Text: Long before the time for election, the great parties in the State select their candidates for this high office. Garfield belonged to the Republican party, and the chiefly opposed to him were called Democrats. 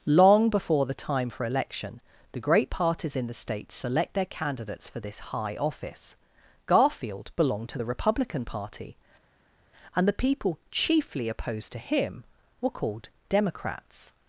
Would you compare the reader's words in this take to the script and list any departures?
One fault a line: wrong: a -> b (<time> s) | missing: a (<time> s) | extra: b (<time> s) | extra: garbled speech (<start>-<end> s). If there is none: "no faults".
extra: people (10.1 s)